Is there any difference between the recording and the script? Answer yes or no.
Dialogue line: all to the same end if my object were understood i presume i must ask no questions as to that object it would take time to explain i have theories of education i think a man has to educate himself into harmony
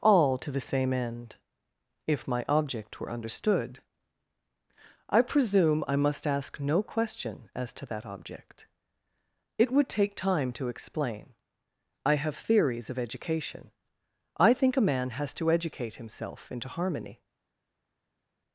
yes